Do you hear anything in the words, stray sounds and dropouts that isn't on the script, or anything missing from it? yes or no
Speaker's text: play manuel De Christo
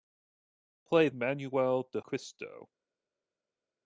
no